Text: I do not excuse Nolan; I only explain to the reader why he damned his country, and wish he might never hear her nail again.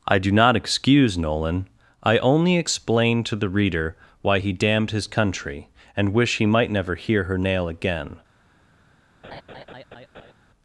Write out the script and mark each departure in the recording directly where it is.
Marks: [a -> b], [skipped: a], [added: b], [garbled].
I do not excuse Nolan; I only explain to the reader why he damned his country, and wish he might never hear her nail again.